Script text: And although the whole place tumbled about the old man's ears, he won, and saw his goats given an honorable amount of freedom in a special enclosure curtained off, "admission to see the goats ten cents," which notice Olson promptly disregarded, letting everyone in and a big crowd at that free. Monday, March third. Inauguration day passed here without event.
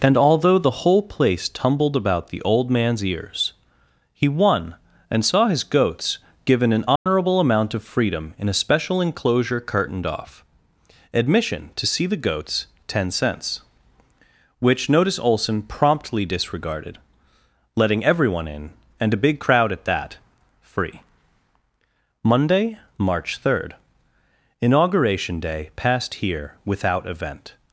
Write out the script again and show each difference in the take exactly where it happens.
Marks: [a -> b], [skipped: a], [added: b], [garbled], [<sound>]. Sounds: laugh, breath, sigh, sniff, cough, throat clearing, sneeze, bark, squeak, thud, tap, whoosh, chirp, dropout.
And although the whole place tumbled about the old man's ears, he won, and saw his goats given an honorable [dropout] amount of freedom in a special enclosure curtained off, "admission to see the goats ten cents," which notice Olson promptly disregarded, letting everyone in and a big crowd at that free. Monday, March third. Inauguration day passed here without event.